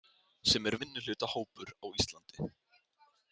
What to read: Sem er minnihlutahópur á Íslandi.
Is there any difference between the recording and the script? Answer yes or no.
no